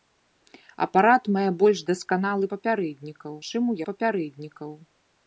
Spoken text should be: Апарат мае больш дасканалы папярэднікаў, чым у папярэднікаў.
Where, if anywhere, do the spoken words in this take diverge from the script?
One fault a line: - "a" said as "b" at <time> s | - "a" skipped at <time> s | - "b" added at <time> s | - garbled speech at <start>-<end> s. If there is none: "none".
none